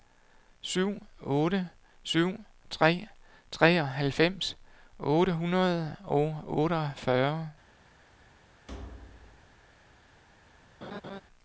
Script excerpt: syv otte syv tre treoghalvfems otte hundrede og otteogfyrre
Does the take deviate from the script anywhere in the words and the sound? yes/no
yes